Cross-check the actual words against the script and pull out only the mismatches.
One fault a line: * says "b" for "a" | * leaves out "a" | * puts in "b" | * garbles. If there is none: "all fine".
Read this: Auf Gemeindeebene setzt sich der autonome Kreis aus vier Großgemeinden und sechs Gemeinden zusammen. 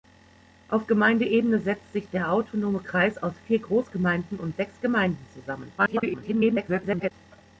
* garbles